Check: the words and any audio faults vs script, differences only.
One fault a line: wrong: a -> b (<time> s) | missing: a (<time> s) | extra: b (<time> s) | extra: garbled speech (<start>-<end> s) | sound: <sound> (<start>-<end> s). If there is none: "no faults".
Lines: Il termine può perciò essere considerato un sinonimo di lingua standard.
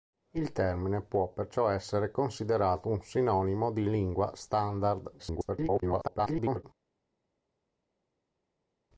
extra: garbled speech (5.2-6.6 s)